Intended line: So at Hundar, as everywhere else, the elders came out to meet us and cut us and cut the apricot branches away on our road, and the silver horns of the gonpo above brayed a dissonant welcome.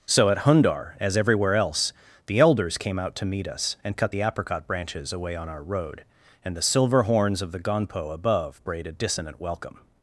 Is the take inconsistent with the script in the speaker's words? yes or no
yes